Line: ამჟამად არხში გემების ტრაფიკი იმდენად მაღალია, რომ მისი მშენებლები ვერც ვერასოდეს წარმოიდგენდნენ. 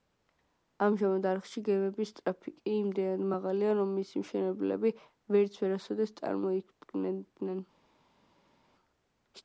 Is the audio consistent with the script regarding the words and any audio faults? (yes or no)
yes